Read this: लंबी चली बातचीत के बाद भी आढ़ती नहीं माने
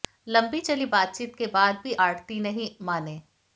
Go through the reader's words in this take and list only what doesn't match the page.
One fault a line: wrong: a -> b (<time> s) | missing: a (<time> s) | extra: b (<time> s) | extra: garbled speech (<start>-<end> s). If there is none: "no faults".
no faults